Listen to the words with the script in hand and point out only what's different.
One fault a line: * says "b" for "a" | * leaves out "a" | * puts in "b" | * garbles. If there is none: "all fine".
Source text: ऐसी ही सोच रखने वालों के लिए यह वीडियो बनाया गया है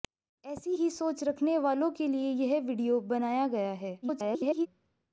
* garbles